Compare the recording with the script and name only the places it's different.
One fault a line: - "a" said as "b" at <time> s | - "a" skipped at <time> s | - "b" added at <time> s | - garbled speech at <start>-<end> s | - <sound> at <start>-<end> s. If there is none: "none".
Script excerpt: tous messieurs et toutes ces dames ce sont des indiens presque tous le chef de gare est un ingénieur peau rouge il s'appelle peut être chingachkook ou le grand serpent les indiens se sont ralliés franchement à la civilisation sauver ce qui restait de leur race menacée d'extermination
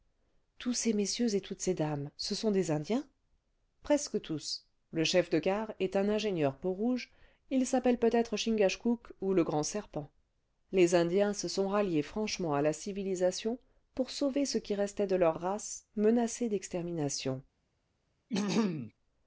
- "ces" added at 0.7 s
- "pour" added at 13.9 s
- throat clearing at 18.3-18.9 s